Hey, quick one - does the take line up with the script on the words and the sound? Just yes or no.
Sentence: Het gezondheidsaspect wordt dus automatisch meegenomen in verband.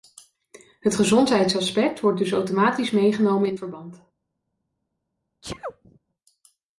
no